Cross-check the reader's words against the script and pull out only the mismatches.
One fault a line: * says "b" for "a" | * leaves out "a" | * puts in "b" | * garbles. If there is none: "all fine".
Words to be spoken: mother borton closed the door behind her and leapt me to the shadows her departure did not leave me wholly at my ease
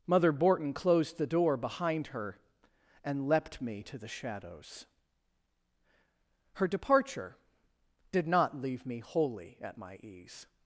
all fine